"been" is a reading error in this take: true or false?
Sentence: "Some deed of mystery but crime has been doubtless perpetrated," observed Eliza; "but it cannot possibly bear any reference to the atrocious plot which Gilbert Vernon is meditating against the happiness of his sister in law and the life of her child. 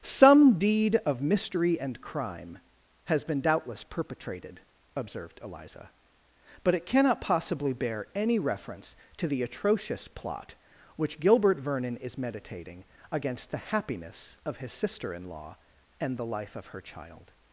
false